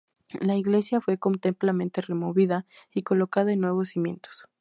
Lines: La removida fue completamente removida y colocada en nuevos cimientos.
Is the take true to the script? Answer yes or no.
no